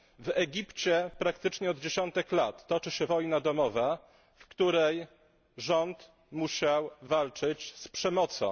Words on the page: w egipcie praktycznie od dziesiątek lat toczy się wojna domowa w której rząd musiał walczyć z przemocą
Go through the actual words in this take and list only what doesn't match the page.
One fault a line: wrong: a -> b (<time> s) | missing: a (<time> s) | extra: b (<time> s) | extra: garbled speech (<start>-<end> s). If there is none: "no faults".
no faults